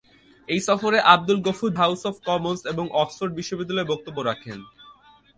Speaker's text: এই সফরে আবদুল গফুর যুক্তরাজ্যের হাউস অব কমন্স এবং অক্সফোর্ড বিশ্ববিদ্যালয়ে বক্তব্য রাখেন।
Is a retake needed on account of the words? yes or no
yes